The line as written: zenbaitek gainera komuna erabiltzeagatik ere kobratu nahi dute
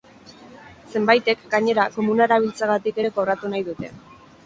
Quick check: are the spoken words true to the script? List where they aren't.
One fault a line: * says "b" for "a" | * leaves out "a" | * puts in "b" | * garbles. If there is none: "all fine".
all fine